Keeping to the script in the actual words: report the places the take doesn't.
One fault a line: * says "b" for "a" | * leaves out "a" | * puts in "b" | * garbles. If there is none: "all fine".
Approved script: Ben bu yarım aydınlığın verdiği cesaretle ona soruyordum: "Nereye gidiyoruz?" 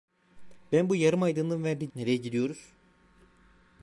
* leaves out "cesaretle ona soruyordum"